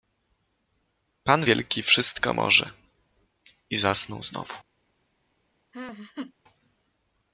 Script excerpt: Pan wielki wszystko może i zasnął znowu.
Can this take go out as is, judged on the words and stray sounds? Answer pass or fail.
fail